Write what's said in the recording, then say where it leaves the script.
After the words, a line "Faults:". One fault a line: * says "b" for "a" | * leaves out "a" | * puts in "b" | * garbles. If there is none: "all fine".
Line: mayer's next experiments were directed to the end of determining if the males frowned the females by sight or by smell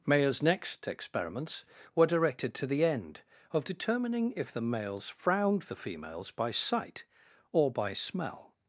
mayer's next experiments were directed to the end of determining if the males frowned the females by sight or by smell
Faults:
all fine